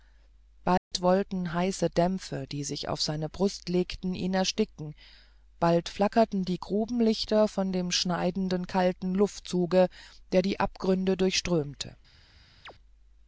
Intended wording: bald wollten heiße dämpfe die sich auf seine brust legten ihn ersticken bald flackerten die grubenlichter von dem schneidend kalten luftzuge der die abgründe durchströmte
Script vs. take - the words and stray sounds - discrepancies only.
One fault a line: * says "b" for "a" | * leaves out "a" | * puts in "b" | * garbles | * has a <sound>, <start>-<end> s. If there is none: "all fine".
* has a dropout, 0.8-0.9 s
* has a chirp, 12.6-12.7 s